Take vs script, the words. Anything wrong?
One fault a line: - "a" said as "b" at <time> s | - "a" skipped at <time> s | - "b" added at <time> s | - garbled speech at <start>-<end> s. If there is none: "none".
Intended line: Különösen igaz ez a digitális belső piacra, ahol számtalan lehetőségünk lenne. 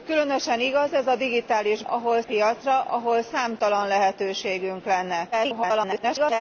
- "belső" said as "ahol" at 1.8 s
- garbled speech at 5.3-6.4 s